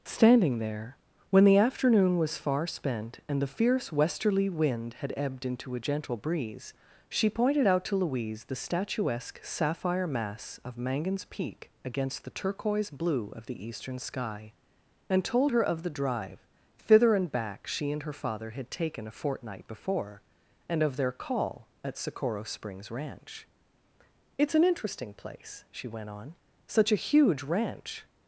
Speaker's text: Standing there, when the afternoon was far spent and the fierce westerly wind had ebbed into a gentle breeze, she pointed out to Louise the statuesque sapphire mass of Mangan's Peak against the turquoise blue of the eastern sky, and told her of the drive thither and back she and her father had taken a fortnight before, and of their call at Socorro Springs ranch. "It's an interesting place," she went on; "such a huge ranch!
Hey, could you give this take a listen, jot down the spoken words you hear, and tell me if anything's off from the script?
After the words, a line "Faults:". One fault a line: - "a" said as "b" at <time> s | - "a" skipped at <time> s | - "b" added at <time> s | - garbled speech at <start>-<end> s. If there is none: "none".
Standing there, when the afternoon was far spent and the fierce westerly wind had ebbed into a gentle breeze, she pointed out to Louise the statuesque sapphire mass of Mangan's Peak against the turquoise blue of the eastern sky, and told her of the drive thither and back she and her father had taken a fortnight before, and of their call at Socorro Springs ranch. "It's an interesting place," she went on; "such a huge ranch!
Faults:
none